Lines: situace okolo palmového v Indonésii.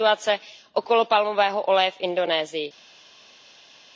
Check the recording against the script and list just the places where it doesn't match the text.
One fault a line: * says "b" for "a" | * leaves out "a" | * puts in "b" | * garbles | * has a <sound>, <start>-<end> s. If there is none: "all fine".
* puts in "oleje"